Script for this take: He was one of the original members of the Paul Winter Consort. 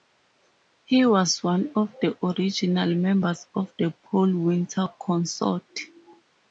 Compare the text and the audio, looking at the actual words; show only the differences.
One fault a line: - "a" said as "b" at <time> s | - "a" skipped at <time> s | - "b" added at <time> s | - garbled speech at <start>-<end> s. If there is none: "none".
none